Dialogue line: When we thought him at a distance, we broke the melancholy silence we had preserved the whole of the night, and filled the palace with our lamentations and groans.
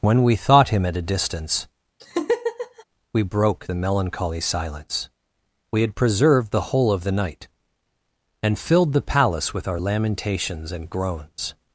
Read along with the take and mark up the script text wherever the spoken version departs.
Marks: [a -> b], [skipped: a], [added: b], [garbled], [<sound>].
When we thought him at a distance, [laugh] we broke the melancholy silence we had preserved the whole of the night, and filled the palace with our lamentations and groans.